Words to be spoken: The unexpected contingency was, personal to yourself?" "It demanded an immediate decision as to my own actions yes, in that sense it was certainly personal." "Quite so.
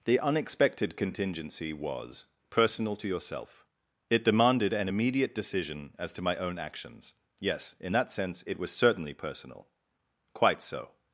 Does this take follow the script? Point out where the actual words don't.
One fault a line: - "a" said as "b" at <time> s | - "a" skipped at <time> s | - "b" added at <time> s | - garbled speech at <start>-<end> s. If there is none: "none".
none